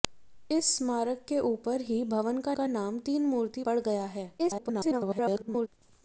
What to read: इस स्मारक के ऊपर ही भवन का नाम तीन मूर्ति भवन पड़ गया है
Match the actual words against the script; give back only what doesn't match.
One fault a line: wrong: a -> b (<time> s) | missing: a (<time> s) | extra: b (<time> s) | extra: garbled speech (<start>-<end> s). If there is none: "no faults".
extra: का (2.5 s)
missing: भवन (3.6 s)
extra: garbled speech (4.4-5.7 s)